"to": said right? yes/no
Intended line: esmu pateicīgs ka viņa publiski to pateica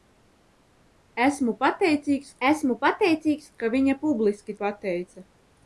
no